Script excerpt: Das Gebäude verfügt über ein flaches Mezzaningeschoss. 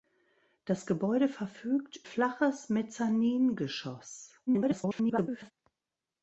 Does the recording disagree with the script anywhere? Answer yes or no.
yes